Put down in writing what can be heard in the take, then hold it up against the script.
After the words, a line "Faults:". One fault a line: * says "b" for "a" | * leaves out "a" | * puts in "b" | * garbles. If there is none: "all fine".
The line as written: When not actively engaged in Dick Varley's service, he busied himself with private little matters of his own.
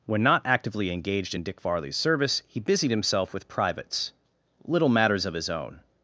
When not actively engaged in Dick Varley's service, he busied himself with privates little matters of his own.
Faults:
* says "privates" for "private"